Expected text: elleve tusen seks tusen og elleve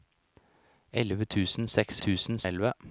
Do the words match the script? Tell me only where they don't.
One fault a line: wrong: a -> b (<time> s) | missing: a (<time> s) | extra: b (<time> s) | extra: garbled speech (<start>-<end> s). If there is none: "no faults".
no faults